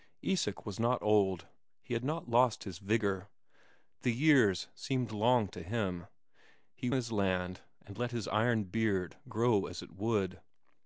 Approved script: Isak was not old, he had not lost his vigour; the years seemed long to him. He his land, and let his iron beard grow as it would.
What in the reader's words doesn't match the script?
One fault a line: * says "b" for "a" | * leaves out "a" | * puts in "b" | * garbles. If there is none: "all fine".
all fine